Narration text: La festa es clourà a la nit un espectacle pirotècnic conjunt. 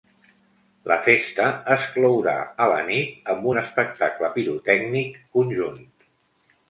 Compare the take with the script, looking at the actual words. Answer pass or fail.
fail